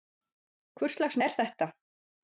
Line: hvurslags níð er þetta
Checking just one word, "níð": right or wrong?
wrong